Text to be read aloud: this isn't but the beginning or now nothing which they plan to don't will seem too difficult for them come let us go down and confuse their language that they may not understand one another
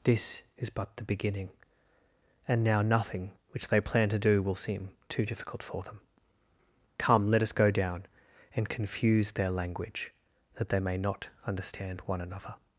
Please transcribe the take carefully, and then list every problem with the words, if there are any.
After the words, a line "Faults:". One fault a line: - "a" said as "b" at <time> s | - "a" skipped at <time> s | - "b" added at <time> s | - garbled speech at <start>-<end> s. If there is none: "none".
this is but the beginning and now nothing which they plan to do will seem too difficult for them come let us go down and confuse their language that they may not understand one another
Faults:
- "isn't" said as "is" at 0.6 s
- "or" said as "and" at 2.5 s
- "don't" said as "do" at 4.2 s